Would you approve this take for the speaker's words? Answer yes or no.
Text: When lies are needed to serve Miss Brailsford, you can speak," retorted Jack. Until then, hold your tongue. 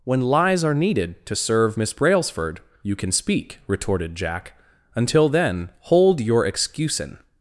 no